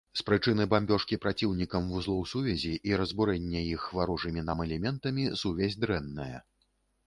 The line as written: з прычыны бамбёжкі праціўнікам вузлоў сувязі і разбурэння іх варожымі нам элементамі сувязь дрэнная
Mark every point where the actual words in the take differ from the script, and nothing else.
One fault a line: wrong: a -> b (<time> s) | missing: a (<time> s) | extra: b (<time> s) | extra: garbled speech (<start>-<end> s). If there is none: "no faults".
no faults